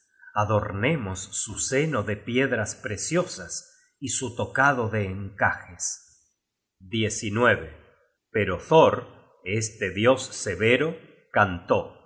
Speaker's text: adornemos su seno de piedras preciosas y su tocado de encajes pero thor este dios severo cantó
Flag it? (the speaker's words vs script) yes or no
no